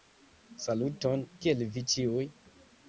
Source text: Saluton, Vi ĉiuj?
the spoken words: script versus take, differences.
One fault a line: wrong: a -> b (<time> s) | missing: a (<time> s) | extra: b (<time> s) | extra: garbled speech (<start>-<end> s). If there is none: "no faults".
extra: Kiel (1.4 s)